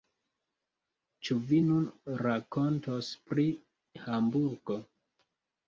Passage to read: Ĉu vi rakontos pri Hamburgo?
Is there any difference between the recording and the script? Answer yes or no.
yes